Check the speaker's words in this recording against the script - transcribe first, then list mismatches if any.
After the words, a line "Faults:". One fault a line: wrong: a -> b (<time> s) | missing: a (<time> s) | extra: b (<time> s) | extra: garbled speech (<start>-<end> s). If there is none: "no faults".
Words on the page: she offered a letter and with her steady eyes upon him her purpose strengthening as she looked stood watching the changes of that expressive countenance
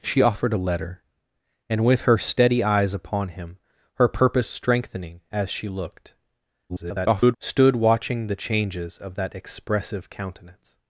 she offered a letter and with her steady eyes upon him her purpose strengthening as she looked [garbled] stood watching the changes of that expressive countenance
Faults:
extra: garbled speech (6.7-7.4 s)